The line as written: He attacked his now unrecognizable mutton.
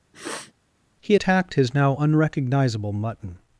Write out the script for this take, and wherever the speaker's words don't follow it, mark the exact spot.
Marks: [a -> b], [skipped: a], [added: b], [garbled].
He attacked his now unrecognizable mutton.